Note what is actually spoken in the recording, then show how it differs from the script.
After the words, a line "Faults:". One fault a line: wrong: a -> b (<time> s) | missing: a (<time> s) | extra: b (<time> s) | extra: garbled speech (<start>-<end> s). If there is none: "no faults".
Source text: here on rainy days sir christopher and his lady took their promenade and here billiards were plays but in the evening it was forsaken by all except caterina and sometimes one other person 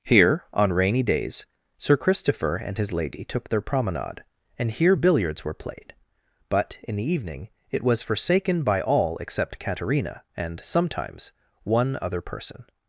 here on rainy days sir christopher and his lady took their promenade and here billiards were played but in the evening it was forsaken by all except caterina and sometimes one other person
Faults:
wrong: plays -> played (5.5 s)